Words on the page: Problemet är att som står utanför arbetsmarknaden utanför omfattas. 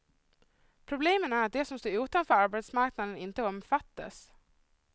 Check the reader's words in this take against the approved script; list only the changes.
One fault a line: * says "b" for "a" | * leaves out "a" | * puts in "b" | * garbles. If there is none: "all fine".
* puts in "de"
* says "inte" for "utanför"